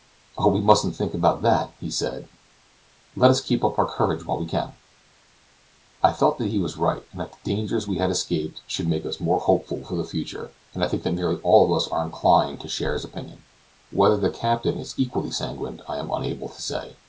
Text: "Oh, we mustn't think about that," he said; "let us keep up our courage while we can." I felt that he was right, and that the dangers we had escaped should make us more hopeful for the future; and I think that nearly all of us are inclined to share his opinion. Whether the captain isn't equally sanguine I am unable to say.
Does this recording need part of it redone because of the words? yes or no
yes